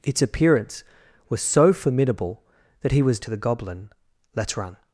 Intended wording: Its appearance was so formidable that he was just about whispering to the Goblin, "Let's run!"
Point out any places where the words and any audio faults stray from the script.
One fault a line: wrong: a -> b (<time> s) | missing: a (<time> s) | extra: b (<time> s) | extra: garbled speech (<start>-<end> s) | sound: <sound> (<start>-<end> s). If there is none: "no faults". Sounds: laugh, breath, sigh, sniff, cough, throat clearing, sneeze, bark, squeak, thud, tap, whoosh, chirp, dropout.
missing: just about whispering (3.2 s)